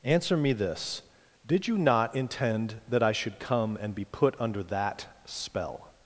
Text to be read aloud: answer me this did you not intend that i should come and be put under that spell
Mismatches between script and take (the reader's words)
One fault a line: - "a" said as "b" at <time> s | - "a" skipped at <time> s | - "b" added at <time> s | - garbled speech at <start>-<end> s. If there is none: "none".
none